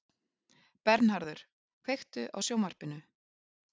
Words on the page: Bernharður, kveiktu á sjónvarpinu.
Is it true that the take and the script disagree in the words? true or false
false